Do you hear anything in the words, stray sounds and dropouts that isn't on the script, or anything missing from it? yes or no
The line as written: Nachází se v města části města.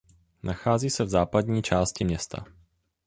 yes